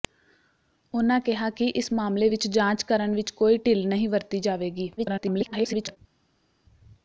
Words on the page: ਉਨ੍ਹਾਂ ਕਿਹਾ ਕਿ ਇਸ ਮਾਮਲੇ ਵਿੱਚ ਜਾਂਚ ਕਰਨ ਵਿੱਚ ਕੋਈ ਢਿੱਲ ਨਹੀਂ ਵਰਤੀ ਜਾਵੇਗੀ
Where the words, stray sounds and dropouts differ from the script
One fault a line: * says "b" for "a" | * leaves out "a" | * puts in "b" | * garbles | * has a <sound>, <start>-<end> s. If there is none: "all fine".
* garbles